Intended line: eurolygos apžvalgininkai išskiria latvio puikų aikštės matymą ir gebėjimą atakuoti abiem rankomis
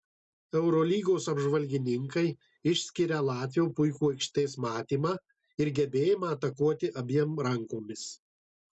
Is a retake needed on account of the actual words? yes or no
no